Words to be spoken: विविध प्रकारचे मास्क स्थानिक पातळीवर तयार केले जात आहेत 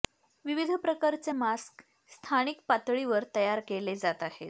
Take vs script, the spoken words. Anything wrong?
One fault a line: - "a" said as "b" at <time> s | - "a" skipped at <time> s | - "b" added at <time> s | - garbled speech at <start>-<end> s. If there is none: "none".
none